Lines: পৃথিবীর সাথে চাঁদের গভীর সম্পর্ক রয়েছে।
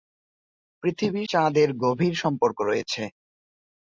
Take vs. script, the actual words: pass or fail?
fail